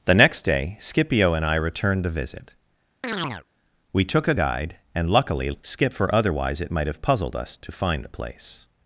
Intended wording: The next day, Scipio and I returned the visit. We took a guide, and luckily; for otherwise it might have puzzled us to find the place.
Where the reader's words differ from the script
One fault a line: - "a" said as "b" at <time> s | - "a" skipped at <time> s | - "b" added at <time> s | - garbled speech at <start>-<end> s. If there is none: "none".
- "skip" added at 5.6 s